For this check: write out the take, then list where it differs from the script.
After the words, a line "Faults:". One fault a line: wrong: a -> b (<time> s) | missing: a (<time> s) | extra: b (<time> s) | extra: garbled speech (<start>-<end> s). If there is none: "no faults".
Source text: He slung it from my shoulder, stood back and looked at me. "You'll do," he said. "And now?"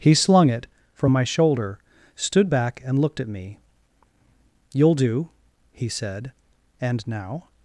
He slung it from my shoulder, stood back and looked at me. "You'll do," he said. "And now?"
Faults:
no faults